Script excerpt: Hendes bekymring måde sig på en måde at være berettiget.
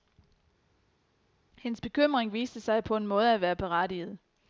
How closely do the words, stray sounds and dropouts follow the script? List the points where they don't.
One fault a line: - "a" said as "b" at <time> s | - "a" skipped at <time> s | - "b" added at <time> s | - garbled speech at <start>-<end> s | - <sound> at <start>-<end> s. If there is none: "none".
- "måde" said as "viste" at 2.3 s